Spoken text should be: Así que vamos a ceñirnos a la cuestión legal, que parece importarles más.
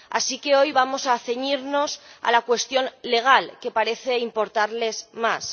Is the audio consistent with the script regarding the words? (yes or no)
no